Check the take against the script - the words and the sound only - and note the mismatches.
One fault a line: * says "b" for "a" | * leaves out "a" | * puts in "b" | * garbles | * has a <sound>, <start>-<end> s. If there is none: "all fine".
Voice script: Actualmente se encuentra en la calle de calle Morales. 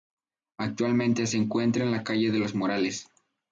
* says "los" for "calle"